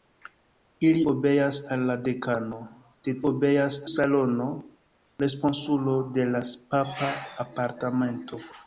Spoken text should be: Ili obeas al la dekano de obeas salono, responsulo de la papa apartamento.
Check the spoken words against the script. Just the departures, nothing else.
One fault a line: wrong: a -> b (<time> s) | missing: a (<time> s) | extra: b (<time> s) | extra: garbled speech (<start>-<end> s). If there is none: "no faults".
no faults